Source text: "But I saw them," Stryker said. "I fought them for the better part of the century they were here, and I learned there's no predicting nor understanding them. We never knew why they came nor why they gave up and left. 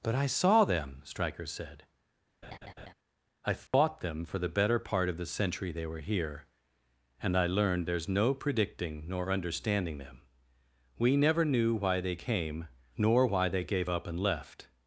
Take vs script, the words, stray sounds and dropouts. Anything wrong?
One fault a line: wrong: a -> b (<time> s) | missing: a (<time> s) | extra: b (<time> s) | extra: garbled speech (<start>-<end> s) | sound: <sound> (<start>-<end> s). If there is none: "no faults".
sound: laugh (2.4-2.9 s)
sound: dropout (3.7-3.7 s)